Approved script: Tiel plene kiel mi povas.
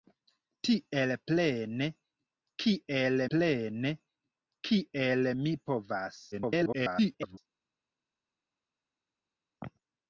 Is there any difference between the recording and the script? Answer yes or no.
yes